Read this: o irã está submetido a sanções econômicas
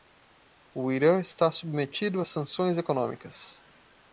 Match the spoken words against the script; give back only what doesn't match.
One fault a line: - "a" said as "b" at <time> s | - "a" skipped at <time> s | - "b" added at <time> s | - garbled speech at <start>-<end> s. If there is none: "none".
none